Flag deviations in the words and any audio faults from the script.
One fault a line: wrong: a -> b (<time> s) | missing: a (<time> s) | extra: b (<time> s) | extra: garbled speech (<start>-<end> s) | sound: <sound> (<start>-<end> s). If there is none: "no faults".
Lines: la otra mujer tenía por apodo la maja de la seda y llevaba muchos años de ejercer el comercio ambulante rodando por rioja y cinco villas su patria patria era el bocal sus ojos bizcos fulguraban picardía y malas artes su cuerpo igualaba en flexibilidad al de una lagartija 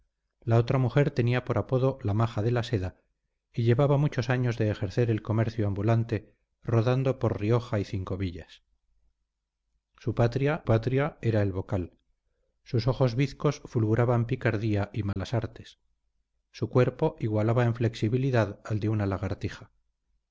sound: dropout (15.1-15.2 s)